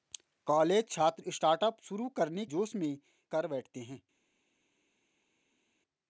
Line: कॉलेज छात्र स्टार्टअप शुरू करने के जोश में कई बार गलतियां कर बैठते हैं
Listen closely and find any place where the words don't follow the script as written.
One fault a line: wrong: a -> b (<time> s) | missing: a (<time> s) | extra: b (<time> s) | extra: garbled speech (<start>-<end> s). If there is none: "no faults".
missing: के (2.5 s)
missing: कई बार गलतियां (3.0 s)